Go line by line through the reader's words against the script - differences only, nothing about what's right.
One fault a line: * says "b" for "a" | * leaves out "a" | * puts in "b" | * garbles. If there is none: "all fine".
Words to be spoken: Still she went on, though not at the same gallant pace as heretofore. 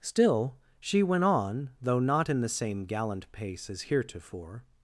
* says "in" for "at"